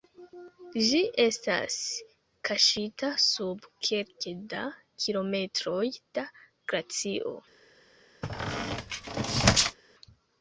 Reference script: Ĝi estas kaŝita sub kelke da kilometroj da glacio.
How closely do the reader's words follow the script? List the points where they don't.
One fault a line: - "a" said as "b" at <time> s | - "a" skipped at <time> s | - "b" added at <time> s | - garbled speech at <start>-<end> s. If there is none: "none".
none